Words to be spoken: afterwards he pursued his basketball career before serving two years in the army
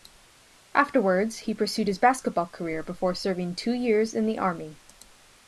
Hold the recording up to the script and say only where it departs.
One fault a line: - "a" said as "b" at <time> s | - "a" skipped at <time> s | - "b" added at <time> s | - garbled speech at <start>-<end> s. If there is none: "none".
none